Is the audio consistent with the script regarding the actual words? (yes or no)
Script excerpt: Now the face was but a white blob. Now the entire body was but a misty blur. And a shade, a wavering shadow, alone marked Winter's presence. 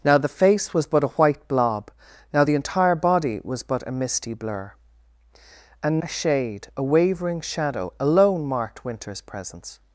yes